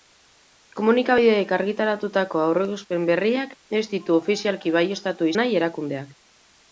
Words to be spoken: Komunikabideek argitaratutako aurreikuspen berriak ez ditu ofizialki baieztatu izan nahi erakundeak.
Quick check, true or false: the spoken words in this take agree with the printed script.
false